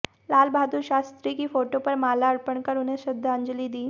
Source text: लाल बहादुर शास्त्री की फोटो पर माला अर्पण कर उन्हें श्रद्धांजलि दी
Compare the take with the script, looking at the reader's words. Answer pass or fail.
pass